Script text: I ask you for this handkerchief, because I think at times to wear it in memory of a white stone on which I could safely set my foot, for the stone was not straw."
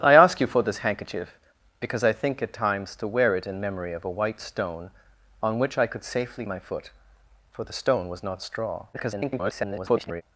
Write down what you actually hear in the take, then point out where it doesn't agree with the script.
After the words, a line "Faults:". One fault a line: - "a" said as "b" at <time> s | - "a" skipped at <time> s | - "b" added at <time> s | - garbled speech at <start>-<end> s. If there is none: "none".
I ask you for this handkerchief, because I think at times to wear it in memory of a white stone on which I could safely my foot, for the stone was not straw." [garbled]
Faults:
- "set" skipped at 6.5 s
- garbled speech at 8.9-10.2 s